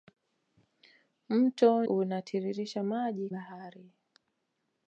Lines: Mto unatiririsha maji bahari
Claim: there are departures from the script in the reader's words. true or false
false